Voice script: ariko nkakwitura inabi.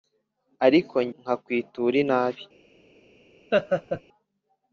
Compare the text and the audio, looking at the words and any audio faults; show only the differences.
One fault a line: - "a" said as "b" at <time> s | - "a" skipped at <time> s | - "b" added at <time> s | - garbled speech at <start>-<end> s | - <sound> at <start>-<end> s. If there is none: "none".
- laugh at 3.5-4.0 s